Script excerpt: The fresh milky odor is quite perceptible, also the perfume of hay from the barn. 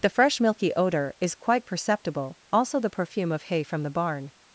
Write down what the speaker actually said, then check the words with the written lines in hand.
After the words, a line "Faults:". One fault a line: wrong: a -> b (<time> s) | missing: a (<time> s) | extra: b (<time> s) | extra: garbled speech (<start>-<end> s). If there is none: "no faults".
The fresh milky odor is quite perceptible, also the perfume of hay from the barn.
Faults:
no faults